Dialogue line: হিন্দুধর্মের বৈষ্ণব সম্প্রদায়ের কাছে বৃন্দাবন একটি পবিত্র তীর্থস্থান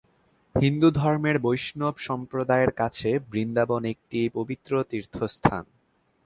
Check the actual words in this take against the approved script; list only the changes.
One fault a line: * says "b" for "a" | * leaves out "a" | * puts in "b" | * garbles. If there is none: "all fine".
all fine